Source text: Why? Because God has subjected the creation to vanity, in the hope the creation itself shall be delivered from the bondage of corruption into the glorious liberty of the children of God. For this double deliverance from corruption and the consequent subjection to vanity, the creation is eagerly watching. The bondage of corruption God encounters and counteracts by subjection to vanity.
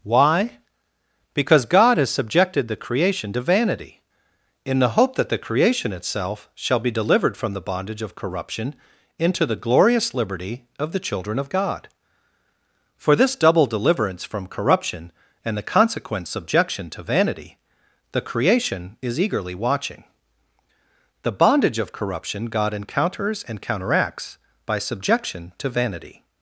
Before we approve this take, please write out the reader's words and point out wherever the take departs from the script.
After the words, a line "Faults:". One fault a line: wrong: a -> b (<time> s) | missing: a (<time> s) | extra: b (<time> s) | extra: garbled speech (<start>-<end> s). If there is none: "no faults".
Why? Because God has subjected the creation to vanity, in the hope that the creation itself shall be delivered from the bondage of corruption into the glorious liberty of the children of God. For this double deliverance from corruption and the consequent subjection to vanity, the creation is eagerly watching. The bondage of corruption God encounters and counteracts by subjection to vanity.
Faults:
extra: that (5.2 s)